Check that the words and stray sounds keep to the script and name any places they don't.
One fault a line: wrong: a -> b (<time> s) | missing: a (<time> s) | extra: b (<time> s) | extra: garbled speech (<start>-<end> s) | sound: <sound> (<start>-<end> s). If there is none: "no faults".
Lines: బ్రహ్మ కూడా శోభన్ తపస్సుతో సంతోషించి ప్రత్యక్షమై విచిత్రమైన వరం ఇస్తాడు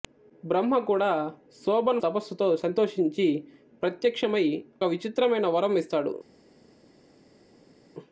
no faults